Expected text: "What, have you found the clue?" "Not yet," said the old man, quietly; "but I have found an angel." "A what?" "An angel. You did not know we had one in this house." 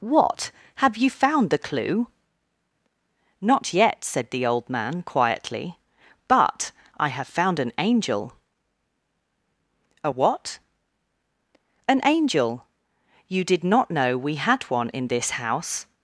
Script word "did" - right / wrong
right